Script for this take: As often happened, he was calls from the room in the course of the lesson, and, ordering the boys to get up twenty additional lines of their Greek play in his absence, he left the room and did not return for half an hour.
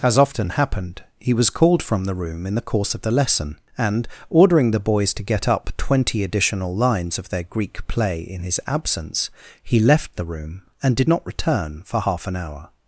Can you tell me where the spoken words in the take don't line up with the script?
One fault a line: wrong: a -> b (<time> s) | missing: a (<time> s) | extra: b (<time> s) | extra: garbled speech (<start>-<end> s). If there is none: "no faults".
wrong: calls -> called (1.5 s)